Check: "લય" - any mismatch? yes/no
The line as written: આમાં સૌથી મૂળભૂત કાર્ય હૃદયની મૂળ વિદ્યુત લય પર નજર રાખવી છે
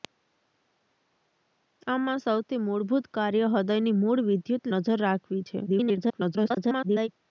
yes